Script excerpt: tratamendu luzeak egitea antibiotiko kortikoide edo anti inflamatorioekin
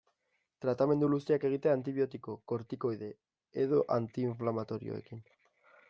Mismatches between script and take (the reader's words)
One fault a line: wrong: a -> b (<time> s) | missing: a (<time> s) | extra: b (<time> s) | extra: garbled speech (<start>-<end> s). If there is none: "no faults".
no faults